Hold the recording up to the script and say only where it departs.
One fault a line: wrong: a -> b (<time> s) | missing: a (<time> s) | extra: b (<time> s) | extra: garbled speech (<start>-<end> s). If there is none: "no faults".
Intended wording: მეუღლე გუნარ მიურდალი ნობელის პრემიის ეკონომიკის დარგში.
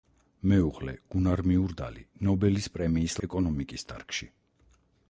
no faults